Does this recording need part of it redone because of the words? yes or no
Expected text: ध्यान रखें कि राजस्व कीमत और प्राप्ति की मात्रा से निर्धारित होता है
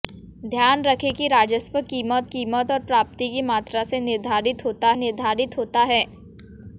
yes